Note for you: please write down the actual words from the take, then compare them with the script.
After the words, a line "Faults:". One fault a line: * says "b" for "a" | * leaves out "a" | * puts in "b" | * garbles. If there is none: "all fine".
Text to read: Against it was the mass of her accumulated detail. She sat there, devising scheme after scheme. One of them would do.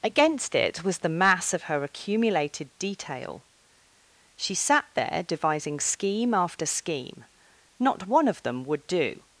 Against it was the mass of her accumulated detail. She sat there, devising scheme after scheme. Not one of them would do.
Faults:
* puts in "Not"